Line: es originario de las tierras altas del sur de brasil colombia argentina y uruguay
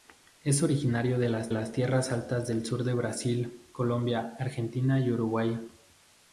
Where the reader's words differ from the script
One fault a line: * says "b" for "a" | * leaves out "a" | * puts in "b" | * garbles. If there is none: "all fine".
* puts in "las"